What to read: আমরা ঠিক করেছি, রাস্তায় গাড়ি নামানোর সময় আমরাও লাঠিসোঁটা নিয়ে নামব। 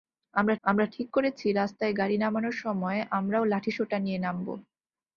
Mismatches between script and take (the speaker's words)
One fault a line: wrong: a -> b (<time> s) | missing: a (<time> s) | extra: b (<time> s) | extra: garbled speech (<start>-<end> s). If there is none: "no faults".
extra: আমরা (0.6 s)